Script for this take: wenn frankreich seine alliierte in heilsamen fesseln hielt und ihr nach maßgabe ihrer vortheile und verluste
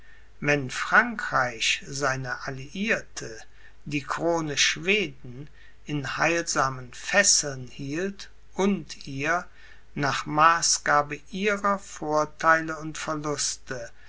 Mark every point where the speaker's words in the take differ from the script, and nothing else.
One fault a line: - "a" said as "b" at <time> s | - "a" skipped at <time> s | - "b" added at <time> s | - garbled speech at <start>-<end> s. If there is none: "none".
- "die krone schweden" added at 3.9 s